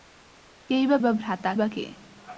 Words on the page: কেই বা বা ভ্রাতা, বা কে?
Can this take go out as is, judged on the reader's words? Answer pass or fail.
pass